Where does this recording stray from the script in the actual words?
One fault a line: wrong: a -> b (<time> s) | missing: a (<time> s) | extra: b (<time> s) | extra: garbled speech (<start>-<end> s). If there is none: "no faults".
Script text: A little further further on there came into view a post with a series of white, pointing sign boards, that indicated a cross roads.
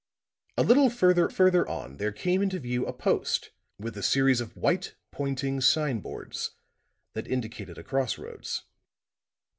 no faults